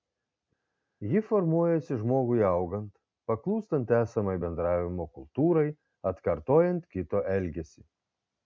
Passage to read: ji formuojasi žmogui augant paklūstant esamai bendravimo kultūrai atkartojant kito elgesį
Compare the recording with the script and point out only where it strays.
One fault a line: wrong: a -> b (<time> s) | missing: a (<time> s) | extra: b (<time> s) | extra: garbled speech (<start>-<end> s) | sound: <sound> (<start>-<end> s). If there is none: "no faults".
no faults